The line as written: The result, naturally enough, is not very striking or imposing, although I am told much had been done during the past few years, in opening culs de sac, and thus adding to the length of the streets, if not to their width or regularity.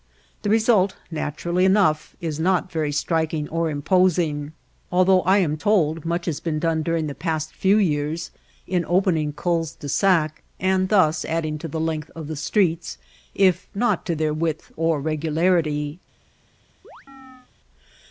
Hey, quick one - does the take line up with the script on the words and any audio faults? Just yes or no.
no